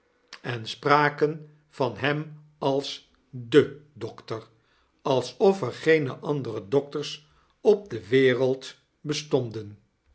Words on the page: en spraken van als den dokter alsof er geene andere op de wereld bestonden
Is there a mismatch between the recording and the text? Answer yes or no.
yes